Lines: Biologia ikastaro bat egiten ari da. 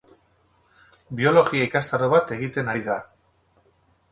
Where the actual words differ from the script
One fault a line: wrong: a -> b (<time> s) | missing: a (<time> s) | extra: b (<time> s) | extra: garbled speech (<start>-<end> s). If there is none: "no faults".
no faults